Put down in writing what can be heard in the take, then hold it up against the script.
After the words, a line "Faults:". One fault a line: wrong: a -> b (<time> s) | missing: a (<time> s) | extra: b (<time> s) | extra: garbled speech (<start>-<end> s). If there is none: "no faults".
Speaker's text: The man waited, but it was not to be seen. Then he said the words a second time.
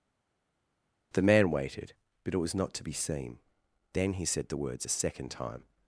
The man waited, but it was not to be seen. Then he said the words a second time.
Faults:
no faults